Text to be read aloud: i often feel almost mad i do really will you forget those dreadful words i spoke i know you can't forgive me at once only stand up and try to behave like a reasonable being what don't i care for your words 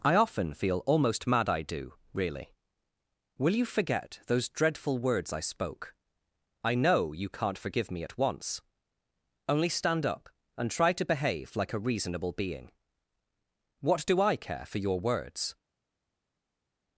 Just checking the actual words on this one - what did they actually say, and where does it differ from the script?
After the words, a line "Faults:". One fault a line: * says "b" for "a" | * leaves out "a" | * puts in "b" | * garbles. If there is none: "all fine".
i often feel almost mad i do really will you forget those dreadful words i spoke i know you can't forgive me at once only stand up and try to behave like a reasonable being what do i care for your words
Faults:
* says "do" for "don't"